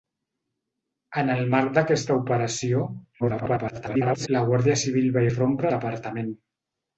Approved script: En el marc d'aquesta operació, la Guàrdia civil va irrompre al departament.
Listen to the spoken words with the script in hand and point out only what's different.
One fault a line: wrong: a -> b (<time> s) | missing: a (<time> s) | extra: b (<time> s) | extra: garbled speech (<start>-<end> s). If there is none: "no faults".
extra: garbled speech (3.2-4.3 s)
missing: al (5.7 s)